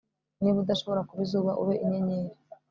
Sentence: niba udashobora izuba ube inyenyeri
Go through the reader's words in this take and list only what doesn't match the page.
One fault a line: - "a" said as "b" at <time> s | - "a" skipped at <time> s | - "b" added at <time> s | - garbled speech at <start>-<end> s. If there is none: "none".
- "kuba" added at 1.1 s